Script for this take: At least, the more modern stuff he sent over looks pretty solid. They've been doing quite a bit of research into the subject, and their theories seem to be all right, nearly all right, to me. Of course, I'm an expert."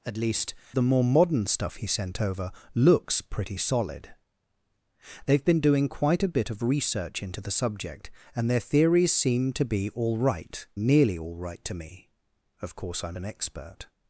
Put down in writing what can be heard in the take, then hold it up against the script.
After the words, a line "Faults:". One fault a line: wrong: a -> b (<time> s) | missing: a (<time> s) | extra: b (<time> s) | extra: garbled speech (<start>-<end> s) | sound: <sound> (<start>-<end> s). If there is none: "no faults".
At least, the more modern stuff he sent over looks pretty solid. They've been doing quite a bit of research into the subject, and their theories seem to be all right, nearly all right, to me. Of course, I'm an expert."
Faults:
no faults